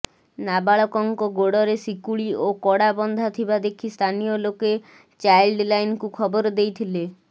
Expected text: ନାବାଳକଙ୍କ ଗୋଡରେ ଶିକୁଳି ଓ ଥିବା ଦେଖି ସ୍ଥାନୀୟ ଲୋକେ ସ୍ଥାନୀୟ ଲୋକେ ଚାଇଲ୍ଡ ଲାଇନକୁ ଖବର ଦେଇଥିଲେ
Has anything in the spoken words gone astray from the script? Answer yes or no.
yes